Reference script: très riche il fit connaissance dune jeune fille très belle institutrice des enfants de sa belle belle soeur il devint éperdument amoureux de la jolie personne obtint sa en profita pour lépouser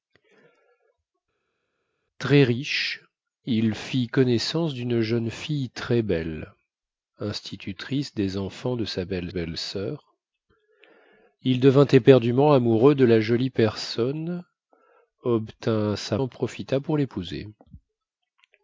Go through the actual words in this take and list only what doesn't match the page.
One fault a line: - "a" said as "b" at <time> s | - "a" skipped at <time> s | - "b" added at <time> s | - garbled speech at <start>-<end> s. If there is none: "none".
none